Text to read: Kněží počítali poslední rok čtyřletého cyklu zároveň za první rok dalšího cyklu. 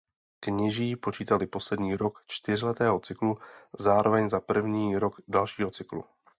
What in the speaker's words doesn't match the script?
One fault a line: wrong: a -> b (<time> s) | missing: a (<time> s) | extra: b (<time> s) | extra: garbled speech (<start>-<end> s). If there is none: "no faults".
no faults